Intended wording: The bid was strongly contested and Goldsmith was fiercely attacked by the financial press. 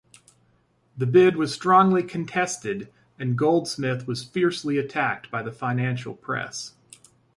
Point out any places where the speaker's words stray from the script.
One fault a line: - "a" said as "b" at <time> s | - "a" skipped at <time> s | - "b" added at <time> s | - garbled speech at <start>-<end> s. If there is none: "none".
none